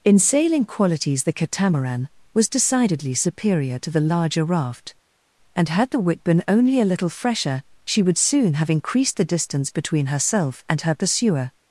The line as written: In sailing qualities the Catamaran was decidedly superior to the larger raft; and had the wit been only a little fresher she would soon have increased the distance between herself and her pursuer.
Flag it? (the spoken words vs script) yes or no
no